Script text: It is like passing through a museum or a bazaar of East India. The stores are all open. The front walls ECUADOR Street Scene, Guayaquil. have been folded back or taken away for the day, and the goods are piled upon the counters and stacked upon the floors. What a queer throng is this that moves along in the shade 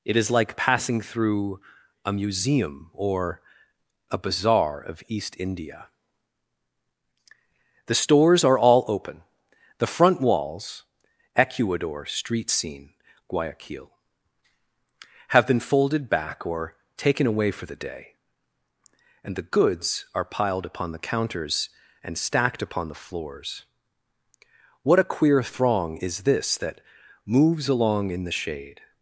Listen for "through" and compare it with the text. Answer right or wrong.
right